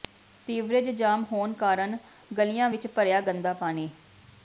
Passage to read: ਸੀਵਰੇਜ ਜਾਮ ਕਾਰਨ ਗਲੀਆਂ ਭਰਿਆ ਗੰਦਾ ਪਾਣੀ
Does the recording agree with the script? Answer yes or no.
no